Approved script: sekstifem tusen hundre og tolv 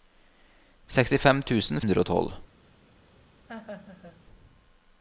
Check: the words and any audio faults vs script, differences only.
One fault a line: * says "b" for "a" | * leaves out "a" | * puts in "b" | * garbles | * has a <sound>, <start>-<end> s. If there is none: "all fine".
* has a laugh, 3.5-4.2 s